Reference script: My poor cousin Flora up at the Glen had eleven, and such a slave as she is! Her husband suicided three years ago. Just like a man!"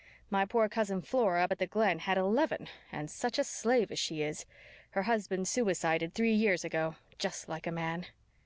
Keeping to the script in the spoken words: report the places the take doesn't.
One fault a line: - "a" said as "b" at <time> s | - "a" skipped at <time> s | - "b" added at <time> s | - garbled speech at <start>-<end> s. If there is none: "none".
none